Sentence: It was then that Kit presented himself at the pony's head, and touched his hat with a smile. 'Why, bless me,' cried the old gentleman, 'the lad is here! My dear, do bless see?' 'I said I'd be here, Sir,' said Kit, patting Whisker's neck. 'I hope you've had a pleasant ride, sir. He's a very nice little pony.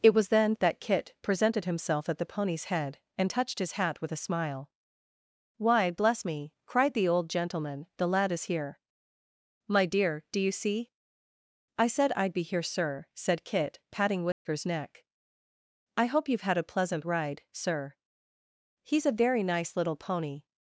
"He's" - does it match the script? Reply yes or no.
yes